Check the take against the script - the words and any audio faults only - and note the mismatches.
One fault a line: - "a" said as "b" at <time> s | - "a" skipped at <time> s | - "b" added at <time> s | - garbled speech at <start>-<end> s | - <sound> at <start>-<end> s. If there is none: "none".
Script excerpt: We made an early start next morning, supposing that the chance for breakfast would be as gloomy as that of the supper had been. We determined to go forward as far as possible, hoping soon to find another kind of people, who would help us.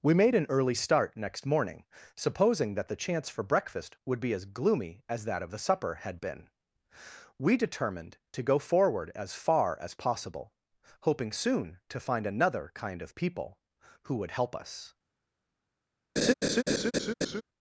- laugh at 16.2-17.4 s